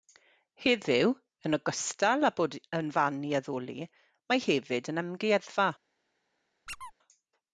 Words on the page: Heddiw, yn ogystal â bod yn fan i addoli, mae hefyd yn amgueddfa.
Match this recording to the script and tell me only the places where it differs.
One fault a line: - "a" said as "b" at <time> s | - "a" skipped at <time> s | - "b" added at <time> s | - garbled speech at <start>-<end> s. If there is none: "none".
none